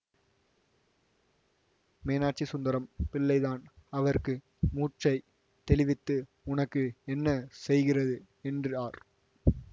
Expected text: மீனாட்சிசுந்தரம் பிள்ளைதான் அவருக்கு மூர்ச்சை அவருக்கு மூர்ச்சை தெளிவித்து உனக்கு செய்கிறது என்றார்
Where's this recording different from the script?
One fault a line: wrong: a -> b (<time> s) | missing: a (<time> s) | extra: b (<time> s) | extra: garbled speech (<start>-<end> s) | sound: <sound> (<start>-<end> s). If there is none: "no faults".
missing: அவருக்கு மூர்ச்சை (5.1 s)
extra: என்ன (7.1 s)